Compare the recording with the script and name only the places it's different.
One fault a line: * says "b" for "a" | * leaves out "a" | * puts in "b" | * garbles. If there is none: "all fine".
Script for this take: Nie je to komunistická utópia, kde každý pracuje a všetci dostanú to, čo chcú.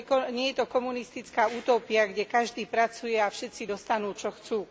* leaves out "to"